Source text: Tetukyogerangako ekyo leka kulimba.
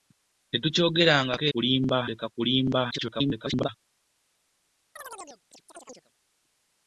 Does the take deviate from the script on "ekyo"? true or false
true